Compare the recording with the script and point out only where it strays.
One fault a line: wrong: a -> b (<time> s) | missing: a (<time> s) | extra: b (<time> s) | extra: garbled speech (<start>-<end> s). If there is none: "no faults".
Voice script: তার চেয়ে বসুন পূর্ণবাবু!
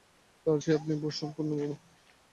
extra: আপনি (0.8 s)